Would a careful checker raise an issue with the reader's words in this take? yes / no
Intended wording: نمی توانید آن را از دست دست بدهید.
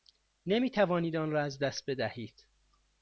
yes